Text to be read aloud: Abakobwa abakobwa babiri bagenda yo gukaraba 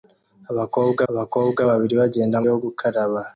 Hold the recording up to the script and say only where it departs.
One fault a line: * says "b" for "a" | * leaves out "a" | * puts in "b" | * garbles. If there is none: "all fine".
all fine